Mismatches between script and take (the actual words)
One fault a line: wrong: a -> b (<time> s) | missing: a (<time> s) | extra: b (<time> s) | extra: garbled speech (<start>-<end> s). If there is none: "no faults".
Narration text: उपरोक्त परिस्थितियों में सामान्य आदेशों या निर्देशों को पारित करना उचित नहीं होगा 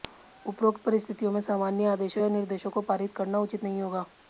no faults